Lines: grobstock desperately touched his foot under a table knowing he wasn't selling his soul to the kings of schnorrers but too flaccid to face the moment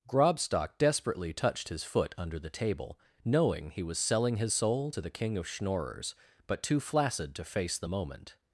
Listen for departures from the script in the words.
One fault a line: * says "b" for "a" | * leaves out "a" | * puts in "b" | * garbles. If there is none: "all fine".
* says "the" for "a"
* says "was" for "wasn't"
* says "king" for "kings"